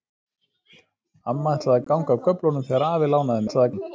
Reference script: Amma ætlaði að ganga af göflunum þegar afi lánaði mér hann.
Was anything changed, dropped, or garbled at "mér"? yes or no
yes